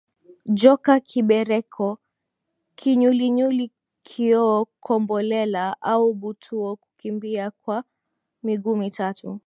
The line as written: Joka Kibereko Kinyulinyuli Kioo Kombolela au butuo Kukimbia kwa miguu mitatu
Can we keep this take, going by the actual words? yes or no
yes